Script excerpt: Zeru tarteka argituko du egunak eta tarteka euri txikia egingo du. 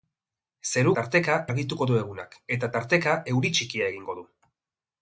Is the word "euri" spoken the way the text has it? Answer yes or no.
yes